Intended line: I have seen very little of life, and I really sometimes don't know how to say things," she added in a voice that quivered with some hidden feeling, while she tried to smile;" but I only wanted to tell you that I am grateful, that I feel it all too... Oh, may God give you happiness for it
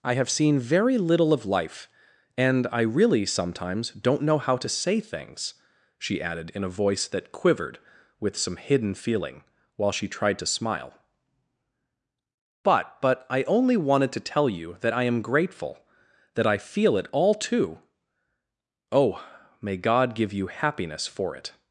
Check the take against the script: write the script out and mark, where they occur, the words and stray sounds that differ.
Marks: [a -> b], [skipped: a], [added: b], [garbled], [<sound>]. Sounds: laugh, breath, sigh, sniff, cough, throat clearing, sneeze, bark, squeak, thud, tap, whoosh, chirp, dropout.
I have seen very little of life, and I really sometimes don't know how to say things," she added in a voice that quivered with some hidden feeling, while she tried to smile;" but [added: but] I only wanted to tell you that I am grateful, that I feel it all too... Oh, may God give you happiness for it